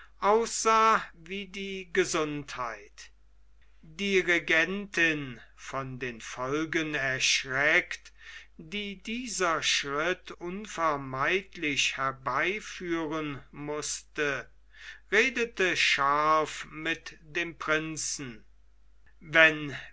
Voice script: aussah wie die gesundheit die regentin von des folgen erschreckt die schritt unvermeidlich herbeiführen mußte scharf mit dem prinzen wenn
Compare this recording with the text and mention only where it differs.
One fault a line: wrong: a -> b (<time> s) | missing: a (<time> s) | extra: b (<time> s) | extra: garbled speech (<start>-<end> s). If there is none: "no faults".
wrong: des -> den (6.0 s)
extra: dieser (9.0 s)
extra: redete (15.1 s)